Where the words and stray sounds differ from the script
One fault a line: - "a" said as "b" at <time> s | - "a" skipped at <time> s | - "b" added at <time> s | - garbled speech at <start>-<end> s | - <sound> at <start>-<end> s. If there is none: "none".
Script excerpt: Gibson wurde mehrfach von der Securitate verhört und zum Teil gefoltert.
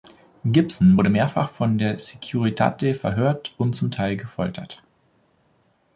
none